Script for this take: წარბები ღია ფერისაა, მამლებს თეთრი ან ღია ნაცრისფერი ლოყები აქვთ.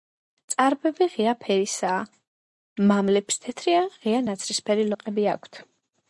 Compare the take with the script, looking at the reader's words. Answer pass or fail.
pass